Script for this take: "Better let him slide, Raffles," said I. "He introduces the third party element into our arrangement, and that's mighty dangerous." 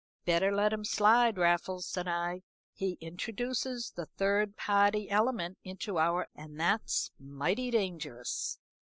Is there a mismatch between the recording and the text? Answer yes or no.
yes